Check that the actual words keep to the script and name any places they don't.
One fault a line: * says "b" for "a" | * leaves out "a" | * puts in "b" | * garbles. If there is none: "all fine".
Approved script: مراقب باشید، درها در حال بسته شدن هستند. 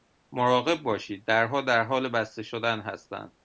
all fine